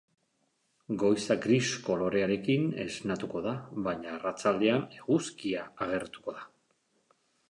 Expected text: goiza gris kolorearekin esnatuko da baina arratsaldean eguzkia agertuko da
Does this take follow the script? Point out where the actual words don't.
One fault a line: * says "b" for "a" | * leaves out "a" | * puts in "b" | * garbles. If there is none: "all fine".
all fine